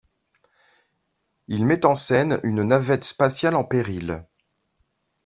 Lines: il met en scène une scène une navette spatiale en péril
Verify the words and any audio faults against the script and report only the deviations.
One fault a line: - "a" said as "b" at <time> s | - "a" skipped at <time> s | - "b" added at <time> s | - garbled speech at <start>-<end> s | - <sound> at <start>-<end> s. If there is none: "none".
- "scène une" skipped at 2.6 s